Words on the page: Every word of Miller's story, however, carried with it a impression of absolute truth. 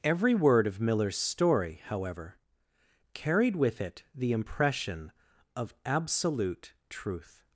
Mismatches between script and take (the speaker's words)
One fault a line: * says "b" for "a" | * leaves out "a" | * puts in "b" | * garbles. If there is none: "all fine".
* says "the" for "a"